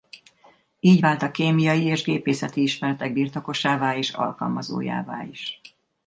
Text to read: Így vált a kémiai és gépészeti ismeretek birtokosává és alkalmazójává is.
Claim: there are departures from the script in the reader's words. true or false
false